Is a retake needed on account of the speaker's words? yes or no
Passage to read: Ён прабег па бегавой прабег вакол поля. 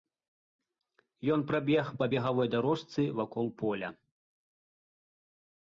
yes